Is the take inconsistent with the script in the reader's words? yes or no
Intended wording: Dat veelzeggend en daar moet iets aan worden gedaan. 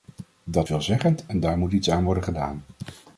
no